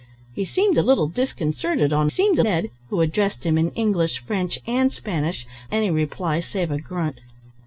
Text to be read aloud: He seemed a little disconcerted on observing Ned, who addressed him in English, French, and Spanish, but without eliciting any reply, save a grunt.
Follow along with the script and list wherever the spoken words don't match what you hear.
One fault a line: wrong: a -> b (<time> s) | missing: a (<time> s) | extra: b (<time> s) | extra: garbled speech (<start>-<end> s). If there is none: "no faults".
wrong: observing -> seemed (2.1 s)
missing: but without eliciting (5.4 s)